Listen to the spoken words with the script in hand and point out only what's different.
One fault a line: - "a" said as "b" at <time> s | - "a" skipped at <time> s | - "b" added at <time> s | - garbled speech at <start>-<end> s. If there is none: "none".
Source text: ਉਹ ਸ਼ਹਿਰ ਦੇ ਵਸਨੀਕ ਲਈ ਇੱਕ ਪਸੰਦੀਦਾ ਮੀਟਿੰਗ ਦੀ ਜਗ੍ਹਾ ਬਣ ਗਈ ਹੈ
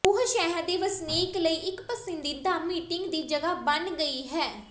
none